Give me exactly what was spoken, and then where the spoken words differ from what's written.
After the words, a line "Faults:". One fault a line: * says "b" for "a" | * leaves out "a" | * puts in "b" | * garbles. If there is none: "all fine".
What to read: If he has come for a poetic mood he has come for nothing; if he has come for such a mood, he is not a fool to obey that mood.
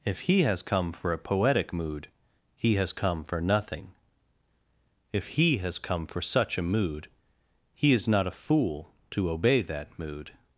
If he has come for a poetic mood he has come for nothing; if he has come for such a mood, he is not a fool to obey that mood.
Faults:
all fine